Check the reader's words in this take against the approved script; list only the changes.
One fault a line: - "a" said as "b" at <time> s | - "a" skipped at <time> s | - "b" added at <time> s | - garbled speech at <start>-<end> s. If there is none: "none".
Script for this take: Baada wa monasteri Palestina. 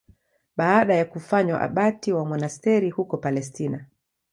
- "ya kufanywa abati" added at 0.9 s
- "huko" added at 2.9 s